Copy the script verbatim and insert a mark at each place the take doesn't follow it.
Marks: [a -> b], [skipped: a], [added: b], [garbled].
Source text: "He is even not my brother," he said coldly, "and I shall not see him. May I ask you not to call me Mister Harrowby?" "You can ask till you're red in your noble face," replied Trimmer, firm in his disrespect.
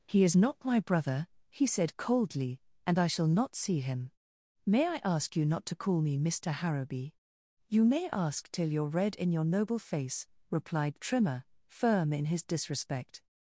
"He is [skipped: even] not my brother," he said coldly, "and I shall not see him. May I ask you not to call me Mister Harrowby?" "You [can -> may] ask till you're red in your noble face," replied Trimmer, firm in his disrespect.